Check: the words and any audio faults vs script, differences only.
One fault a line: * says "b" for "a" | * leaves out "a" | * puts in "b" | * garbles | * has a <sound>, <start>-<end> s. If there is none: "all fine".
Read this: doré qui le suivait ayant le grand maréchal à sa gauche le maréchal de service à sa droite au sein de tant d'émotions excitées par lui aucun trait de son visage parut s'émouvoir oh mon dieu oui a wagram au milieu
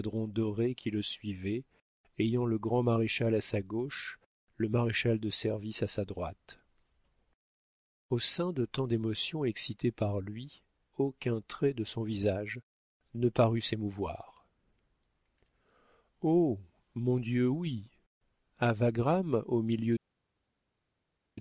* puts in "ne"